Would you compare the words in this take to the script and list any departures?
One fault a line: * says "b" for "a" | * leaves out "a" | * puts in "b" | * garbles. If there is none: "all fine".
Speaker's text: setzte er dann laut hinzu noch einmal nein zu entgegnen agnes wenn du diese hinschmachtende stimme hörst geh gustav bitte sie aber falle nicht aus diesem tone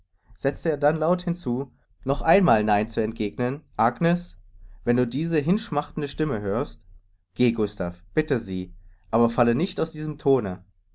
all fine